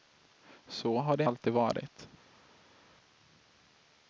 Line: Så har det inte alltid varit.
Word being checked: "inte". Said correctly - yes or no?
no